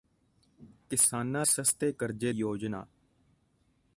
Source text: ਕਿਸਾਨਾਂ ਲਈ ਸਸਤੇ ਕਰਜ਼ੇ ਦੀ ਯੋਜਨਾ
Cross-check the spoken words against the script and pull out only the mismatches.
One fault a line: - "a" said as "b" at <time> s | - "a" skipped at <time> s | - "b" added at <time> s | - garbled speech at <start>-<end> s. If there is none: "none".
- "ਲਈ" skipped at 1.4 s
- "ਦੀ" skipped at 2.3 s